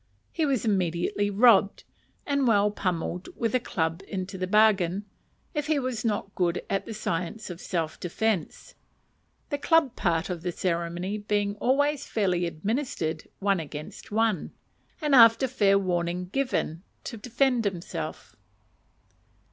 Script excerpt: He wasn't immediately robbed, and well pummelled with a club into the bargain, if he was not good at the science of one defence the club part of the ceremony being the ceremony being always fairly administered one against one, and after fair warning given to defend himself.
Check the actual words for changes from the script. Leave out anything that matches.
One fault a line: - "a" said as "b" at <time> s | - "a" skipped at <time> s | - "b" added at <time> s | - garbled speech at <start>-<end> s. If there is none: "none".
- "wasn't" said as "was" at 0.5 s
- "one" said as "self" at 7.6 s
- "the ceremony being" skipped at 11.6 s